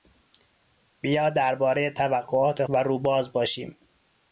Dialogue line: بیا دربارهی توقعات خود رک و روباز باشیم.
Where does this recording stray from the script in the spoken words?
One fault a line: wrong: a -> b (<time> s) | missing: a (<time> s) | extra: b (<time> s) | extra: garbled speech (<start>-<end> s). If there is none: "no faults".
missing: خود رک (2.6 s)